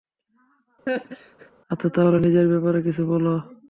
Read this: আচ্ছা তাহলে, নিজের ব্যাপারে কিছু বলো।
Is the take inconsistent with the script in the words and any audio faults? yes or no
yes